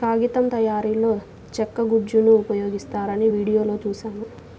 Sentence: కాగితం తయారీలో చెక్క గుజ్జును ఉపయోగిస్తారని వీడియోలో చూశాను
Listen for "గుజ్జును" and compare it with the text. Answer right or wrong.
right